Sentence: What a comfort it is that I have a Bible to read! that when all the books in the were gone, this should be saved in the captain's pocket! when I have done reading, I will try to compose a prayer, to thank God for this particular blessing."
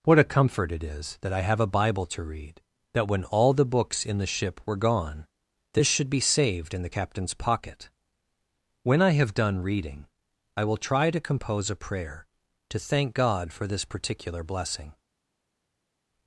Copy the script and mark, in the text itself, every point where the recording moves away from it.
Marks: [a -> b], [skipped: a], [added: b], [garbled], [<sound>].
What a comfort it is that I have a Bible to read! that when all the books in the [added: ship] were gone, this should be saved in the captain's pocket! when I have done reading, I will try to compose a prayer, to thank God for this particular blessing."